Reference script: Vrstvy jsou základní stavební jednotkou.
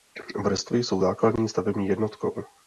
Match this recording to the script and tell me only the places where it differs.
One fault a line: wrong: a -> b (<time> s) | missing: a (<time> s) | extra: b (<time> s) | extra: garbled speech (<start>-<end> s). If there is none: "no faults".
no faults